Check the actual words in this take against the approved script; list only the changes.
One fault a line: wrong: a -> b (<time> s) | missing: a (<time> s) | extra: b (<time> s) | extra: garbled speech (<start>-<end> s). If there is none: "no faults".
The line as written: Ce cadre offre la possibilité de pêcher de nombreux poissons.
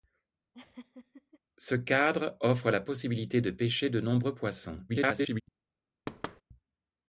extra: garbled speech (4.9-5.4 s)